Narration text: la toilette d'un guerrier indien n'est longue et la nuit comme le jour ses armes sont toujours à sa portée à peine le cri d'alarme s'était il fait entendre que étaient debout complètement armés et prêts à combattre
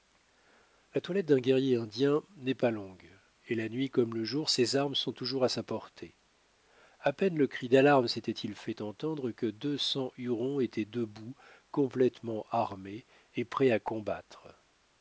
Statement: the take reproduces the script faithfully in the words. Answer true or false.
false